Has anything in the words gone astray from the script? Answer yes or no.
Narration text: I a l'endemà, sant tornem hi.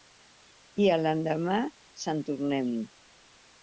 no